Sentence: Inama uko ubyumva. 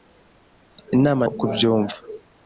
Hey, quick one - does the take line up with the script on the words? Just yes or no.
yes